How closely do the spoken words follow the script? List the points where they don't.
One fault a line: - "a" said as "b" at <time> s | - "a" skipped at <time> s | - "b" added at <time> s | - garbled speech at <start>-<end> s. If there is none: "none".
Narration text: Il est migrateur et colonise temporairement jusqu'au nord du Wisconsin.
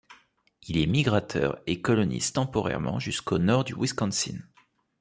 none